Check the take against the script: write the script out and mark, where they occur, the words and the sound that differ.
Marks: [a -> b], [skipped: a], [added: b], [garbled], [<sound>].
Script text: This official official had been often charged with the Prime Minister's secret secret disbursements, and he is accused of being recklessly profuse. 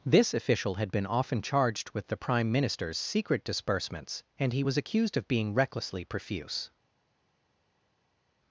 This official [skipped: official] had been often charged with the Prime Minister's secret [skipped: secret] disbursements, and he [is -> was] accused of being recklessly profuse.